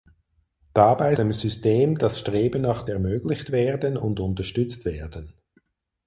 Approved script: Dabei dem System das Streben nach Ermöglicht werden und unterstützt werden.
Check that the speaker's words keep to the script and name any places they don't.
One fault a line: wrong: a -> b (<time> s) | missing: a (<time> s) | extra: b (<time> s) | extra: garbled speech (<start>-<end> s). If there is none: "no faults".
no faults